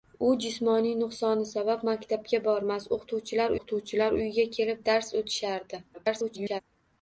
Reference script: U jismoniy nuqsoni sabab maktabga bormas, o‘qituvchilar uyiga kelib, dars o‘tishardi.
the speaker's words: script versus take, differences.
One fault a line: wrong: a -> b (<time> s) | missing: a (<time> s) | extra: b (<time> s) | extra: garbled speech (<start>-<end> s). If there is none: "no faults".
extra: o‘qituvchilar (3.6 s)
extra: garbled speech (5.9-6.6 s)